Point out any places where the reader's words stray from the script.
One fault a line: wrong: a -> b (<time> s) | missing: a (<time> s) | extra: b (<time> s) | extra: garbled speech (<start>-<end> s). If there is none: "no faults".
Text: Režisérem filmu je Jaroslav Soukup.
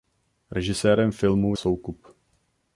missing: je Jaroslav (1.6 s)